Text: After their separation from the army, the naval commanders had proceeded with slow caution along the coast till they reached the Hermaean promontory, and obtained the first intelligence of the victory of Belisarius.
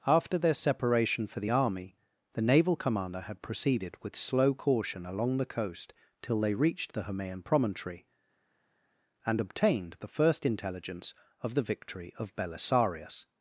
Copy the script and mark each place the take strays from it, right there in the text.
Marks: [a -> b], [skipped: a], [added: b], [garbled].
After their separation [from -> for] the army, the naval [commanders -> commander] had proceeded with slow caution along the coast till they reached the Hermaean promontory, and obtained the first intelligence of the victory of Belisarius.